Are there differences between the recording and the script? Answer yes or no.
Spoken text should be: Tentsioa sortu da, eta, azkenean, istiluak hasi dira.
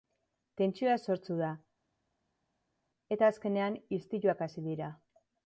no